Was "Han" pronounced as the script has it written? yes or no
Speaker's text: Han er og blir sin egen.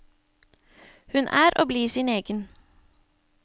no